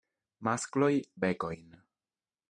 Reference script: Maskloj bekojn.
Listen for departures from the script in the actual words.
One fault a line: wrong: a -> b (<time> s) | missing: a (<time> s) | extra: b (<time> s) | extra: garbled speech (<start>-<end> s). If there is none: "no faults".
no faults